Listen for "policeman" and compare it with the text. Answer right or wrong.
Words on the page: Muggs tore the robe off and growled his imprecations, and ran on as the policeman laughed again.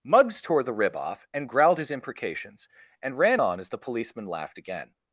right